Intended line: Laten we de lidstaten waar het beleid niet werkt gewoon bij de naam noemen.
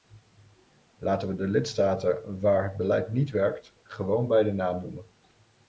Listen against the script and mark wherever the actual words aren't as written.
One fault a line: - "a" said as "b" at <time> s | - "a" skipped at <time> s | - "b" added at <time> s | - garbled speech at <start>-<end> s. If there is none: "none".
none